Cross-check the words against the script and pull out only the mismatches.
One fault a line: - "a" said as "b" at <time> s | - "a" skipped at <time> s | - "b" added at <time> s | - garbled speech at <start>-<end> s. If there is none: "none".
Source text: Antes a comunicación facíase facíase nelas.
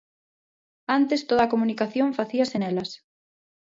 - "toda" added at 1.3 s
- "facíase" skipped at 2.6 s